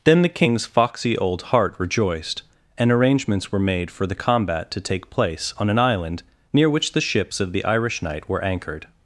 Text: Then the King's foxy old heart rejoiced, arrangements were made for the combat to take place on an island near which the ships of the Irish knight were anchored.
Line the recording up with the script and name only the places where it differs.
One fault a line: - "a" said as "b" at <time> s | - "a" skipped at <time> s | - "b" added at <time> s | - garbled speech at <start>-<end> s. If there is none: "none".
- "and" added at 2.8 s